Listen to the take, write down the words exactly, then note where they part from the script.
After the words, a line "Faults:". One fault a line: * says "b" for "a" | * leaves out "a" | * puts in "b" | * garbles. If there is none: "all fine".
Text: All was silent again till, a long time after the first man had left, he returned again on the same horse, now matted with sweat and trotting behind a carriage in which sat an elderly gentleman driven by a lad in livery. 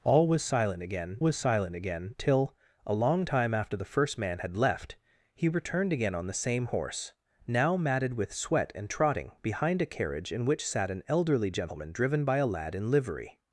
All was silent again was silent again till, a long time after the first man had left, he returned again on the same horse, now matted with sweat and trotting behind a carriage in which sat an elderly gentleman driven by a lad in livery.
Faults:
* puts in "was silent again"